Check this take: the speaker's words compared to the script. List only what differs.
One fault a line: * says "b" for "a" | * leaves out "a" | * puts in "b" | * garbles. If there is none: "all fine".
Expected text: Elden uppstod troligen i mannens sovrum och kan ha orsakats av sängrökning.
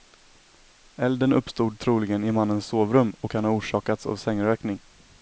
all fine